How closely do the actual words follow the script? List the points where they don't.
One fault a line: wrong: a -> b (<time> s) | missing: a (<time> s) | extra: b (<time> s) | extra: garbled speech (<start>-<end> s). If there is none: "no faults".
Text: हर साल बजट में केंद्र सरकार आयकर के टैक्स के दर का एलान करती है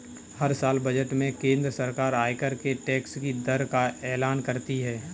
wrong: के -> की (3.2 s)